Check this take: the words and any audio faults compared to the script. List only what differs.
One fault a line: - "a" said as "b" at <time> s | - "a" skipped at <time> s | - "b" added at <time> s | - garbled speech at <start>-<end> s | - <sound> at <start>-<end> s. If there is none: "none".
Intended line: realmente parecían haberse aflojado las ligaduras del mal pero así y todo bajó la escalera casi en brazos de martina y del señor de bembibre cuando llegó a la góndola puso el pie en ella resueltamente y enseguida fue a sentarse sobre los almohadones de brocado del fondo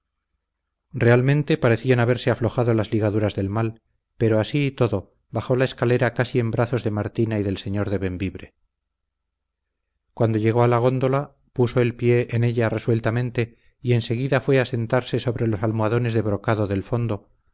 none